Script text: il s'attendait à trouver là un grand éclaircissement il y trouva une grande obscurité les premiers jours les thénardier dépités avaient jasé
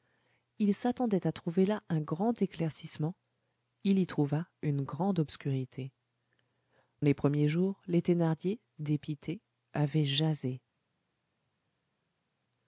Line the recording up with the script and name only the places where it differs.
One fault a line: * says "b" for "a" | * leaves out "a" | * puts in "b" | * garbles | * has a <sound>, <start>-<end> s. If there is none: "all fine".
all fine